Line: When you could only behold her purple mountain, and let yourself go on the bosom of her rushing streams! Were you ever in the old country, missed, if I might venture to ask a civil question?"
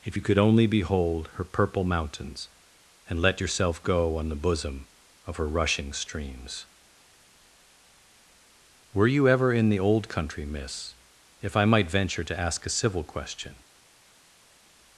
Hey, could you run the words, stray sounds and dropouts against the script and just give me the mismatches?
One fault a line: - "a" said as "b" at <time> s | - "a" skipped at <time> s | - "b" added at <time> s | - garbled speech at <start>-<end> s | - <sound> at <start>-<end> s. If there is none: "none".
- "When" said as "If" at 0.0 s
- "mountain" said as "mountains" at 1.8 s
- "missed" said as "miss" at 10.5 s